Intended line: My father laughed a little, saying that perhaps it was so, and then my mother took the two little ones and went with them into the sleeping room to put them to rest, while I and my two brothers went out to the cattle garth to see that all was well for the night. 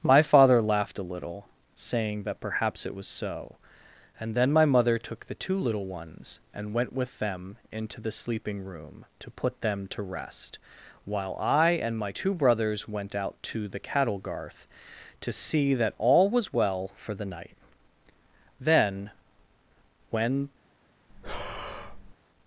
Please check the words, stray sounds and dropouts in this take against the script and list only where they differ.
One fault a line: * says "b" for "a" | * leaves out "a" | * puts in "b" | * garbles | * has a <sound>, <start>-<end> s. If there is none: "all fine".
* puts in "Then when"
* has a breath, 21.1-22.1 s